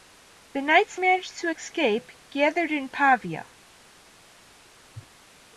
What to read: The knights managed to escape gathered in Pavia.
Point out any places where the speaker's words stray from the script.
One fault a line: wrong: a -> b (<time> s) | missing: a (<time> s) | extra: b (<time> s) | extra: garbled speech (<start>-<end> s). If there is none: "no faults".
no faults